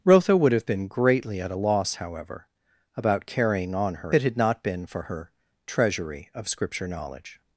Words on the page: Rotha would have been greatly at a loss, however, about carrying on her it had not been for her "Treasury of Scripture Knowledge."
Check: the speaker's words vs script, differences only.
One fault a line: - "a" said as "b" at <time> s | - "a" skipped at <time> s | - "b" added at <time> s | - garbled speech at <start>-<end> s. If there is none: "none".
none